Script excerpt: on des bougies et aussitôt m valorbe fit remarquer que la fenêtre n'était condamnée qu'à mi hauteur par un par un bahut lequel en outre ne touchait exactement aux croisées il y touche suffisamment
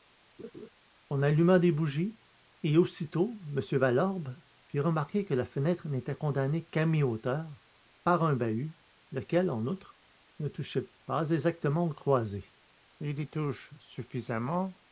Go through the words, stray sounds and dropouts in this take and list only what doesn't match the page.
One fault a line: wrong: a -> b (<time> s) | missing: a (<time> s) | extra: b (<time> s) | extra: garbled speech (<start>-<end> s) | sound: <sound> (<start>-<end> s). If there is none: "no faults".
sound: laugh (0.4-0.7 s)
extra: alluma (1.2 s)
missing: par un (8.3 s)
extra: pas (11.0 s)